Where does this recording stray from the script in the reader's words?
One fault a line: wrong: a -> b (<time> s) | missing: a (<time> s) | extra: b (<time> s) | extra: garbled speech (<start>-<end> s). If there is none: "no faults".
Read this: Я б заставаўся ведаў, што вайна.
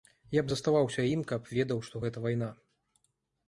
extra: ім каб (1.1 s)
extra: гэта (2.0 s)